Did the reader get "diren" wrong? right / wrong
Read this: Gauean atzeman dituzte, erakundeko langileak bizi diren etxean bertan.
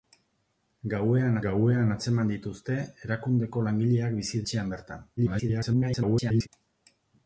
wrong